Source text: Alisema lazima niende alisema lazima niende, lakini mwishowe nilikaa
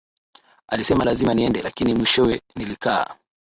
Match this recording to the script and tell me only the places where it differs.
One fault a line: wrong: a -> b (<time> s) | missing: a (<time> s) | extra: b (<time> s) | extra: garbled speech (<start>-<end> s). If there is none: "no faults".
missing: alisema lazima niende (1.6 s)